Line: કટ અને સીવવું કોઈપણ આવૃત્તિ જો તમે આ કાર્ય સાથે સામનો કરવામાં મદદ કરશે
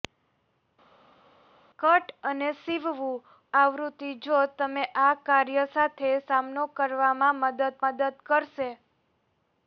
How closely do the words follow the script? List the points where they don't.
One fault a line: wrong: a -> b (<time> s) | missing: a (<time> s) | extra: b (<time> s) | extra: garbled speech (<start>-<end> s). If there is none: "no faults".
missing: કોઈપણ (3.2 s)
extra: મદદ (7.8 s)